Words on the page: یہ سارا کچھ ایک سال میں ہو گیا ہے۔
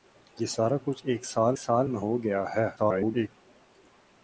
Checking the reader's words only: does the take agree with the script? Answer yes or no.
no